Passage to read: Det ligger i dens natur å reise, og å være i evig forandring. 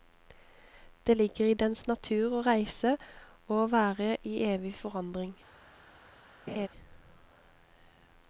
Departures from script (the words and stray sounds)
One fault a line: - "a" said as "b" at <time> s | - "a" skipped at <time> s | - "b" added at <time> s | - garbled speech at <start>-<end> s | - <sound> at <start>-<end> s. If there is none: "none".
- laugh at 6.5-6.7 s